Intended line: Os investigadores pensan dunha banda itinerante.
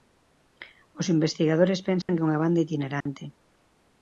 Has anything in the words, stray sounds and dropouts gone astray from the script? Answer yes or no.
yes